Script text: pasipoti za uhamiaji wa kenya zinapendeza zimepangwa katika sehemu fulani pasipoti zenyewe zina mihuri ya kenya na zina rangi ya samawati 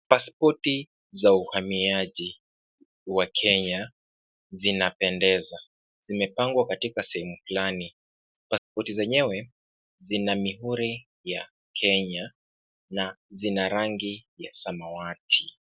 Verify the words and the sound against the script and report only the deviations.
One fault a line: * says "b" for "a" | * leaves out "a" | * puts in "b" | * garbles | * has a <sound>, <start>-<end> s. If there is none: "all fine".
* has a dropout, 8.6-8.7 s